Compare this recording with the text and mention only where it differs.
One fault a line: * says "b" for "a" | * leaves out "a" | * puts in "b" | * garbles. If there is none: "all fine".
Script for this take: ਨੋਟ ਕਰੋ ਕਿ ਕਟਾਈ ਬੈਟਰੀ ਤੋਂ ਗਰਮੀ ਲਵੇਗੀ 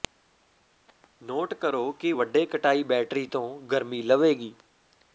* puts in "ਵੱਡੇ"